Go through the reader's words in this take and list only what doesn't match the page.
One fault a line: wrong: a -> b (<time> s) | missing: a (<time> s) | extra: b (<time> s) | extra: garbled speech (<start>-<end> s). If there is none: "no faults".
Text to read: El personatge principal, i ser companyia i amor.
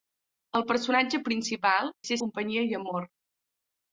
no faults